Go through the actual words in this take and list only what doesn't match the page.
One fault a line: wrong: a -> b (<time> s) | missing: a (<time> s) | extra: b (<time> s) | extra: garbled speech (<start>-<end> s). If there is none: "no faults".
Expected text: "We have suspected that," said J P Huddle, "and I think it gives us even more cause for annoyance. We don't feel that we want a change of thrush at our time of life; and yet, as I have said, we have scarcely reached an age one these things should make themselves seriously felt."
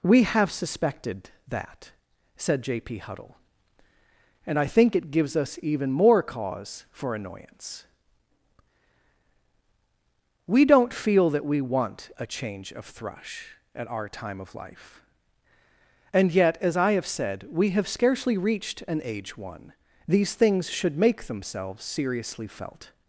no faults